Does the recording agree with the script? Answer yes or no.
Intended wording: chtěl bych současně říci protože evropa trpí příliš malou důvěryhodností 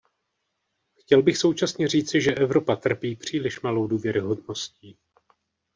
no